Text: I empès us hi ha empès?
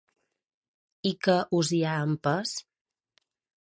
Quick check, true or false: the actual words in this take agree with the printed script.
false